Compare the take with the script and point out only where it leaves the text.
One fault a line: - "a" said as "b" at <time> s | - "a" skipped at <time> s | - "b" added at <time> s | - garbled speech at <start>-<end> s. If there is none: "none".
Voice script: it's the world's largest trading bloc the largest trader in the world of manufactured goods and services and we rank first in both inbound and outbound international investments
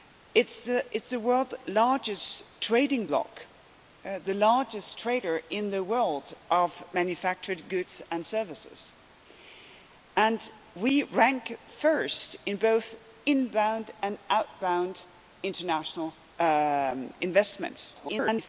- garbled speech at 17.9-18.5 s